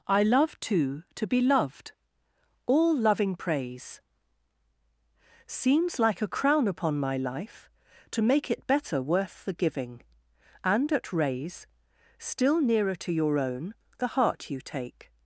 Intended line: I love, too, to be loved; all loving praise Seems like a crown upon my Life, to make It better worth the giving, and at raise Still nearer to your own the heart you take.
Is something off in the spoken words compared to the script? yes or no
no